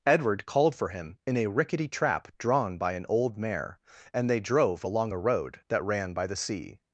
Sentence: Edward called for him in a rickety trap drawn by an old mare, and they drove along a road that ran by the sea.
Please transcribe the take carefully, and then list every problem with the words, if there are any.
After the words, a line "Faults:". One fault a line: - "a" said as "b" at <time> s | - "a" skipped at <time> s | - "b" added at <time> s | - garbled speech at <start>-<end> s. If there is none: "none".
Edward called for him in a rickety trap drawn by an old mare, and they drove along a road that ran by the sea.
Faults:
none